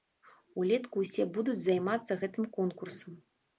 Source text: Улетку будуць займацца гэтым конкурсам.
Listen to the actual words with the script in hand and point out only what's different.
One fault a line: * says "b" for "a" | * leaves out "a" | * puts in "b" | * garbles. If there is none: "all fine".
* puts in "ўсе"